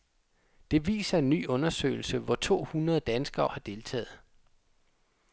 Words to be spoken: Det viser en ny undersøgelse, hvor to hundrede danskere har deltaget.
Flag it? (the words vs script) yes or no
no